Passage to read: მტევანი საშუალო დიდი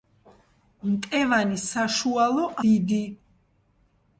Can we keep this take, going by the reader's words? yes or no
yes